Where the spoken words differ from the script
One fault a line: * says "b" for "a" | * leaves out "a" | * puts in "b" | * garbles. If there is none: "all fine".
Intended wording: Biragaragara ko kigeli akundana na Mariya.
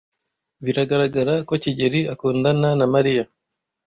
all fine